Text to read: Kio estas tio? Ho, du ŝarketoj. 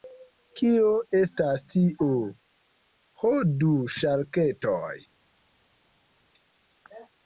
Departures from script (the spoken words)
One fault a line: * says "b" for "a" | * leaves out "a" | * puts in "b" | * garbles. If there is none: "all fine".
all fine